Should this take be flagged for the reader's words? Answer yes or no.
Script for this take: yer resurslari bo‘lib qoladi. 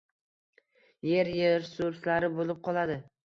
no